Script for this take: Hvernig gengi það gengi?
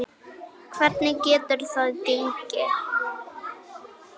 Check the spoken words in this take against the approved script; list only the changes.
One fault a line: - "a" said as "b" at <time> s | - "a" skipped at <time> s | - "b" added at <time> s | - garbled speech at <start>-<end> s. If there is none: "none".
- "gengi" said as "getur" at 1.3 s